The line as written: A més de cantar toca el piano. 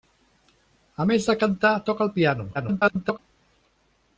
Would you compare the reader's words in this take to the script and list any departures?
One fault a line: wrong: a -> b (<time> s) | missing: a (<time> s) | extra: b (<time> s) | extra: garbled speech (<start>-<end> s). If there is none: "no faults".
extra: garbled speech (2.5-3.2 s)